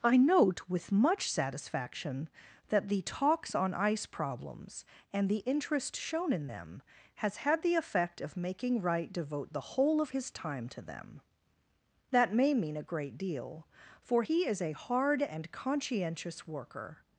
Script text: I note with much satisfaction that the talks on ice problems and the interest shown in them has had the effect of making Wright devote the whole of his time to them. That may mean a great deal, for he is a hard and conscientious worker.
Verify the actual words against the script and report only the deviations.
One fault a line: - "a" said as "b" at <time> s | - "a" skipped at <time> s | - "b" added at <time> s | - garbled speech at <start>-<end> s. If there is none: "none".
none